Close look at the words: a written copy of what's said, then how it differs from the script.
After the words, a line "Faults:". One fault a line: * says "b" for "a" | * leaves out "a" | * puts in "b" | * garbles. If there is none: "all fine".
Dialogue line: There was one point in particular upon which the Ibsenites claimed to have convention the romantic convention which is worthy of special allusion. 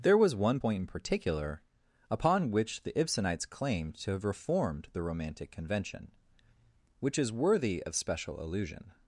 There was one point in particular upon which the Ibsenites claimed to have reformed the romantic convention which is worthy of special allusion.
Faults:
* says "reformed" for "convention"